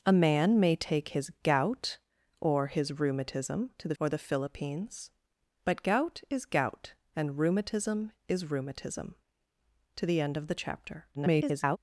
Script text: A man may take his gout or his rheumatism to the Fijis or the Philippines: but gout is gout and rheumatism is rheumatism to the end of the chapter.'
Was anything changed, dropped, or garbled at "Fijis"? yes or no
yes